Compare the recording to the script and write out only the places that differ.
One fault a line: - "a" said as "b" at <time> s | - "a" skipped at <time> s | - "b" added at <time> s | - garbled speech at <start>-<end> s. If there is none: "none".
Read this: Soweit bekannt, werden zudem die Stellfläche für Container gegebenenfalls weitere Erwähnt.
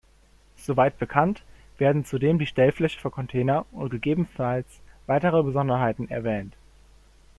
- "und" added at 3.7 s
- "Besonderheiten" added at 5.4 s